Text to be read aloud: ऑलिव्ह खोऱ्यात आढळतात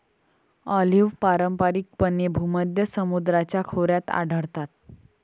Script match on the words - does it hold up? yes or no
no